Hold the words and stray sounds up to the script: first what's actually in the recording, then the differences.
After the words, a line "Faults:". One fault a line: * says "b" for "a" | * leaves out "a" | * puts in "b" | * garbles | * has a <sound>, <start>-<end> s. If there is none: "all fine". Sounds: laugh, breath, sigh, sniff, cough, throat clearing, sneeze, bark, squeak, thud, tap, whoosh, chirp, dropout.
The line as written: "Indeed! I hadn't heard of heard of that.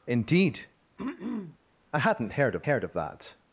"Indeed! I hadn't heard of heard of that.
Faults:
* has a throat clearing, 1.0-1.6 s